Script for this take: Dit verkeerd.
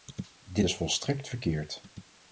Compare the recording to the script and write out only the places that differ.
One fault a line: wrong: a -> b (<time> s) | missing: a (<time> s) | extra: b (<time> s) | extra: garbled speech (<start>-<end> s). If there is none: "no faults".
extra: is volstrekt (0.6 s)